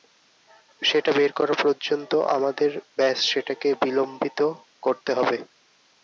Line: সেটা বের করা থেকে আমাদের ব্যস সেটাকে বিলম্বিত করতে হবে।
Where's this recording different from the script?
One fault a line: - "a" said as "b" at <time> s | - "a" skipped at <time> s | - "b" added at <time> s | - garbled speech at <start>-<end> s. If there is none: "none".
- "থেকে" said as "পর্যন্ত" at 1.6 s